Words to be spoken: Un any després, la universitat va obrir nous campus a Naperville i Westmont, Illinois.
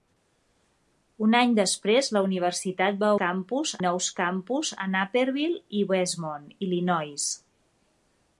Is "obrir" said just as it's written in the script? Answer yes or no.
no